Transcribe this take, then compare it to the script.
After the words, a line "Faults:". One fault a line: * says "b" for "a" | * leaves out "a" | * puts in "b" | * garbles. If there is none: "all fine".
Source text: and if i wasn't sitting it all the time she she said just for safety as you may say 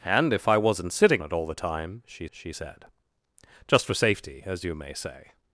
and if i wasn't sitting it all the time she she said just for safety as you may say
Faults:
all fine